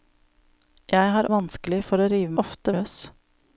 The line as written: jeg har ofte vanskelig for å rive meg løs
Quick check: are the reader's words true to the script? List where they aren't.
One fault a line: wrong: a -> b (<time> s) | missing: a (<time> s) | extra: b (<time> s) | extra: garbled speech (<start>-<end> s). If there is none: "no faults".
missing: ofte (1.3 s)
wrong: meg -> ofte (2.4 s)